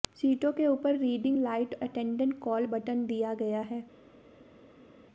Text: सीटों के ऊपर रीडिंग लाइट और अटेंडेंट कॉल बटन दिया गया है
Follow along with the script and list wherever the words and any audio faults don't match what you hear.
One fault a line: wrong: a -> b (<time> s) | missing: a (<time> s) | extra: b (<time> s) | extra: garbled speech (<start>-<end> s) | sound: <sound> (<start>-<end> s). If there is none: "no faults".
missing: और (1.7 s)